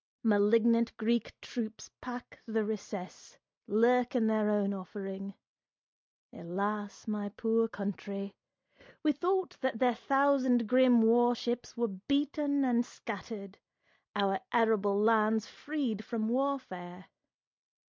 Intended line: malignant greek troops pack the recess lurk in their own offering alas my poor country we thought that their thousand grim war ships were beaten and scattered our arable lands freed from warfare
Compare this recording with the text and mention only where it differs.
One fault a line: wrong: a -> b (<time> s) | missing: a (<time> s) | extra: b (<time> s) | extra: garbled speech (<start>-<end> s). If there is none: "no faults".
no faults